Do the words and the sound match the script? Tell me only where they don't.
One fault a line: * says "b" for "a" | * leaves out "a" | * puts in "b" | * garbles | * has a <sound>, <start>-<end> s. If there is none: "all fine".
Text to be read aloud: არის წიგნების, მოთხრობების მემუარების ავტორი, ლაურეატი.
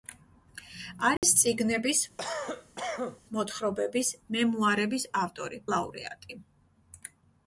* has a dropout, 1.2-1.2 s
* has a cough, 2.2-3.2 s